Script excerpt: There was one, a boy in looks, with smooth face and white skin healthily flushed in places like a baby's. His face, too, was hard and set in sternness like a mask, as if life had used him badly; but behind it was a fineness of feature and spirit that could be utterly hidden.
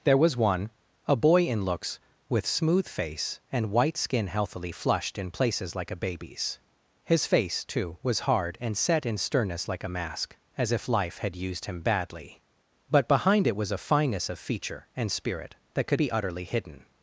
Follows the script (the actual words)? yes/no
yes